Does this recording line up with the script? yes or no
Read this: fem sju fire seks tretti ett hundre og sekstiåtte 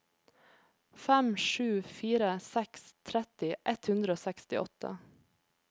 yes